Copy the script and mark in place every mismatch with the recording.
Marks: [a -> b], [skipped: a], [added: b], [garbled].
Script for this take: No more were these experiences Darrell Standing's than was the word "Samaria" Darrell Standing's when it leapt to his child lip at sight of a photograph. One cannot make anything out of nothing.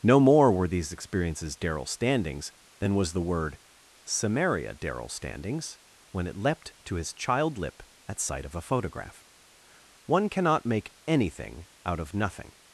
No more were these experiences Darrell Standing's than was the word "Samaria" Darrell Standing's when it leapt to his child lip at sight of a photograph. One cannot make anything out of nothing.